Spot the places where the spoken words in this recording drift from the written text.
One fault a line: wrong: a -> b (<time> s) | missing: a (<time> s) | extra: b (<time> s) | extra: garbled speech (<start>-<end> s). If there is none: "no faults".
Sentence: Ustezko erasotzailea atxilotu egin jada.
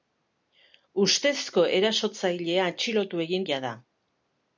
no faults